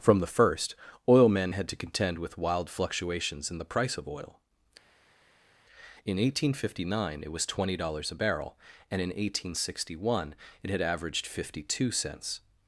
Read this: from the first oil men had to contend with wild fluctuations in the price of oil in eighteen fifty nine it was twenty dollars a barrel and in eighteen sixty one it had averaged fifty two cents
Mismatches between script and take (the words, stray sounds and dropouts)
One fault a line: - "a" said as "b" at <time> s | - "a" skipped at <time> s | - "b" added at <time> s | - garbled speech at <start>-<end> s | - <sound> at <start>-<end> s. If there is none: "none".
none